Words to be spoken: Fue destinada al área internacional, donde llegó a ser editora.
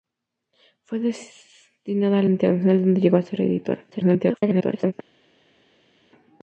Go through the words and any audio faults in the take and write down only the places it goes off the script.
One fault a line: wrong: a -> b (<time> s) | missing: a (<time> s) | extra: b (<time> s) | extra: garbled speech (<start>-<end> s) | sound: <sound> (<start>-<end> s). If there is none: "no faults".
missing: área (2.3 s)
extra: garbled speech (3.9-4.9 s)